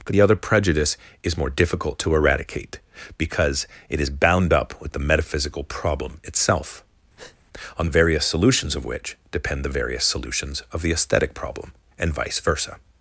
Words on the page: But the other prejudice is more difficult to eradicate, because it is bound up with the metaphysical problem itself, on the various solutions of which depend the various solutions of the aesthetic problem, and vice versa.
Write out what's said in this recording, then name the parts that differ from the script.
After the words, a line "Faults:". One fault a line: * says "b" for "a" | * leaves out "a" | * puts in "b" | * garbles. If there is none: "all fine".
But the other prejudice is more difficult to eradicate, because it is bound up with the metaphysical problem itself, on the various solutions of which depend the various solutions of the aesthetic problem, and vice versa.
Faults:
all fine